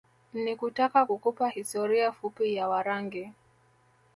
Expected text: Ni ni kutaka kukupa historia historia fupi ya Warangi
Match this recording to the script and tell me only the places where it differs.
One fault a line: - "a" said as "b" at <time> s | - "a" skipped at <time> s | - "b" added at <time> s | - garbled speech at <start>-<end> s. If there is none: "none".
- "ni" skipped at 0.6 s
- "historia" skipped at 2.1 s